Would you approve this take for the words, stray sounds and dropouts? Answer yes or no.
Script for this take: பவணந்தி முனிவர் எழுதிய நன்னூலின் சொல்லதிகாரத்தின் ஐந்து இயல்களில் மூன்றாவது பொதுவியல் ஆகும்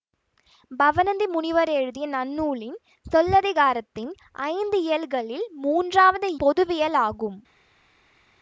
yes